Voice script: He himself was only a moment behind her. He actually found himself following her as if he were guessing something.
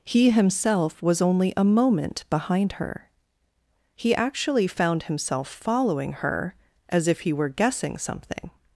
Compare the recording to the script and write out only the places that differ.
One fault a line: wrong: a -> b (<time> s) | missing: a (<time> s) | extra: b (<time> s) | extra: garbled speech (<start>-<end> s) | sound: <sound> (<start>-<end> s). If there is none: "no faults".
no faults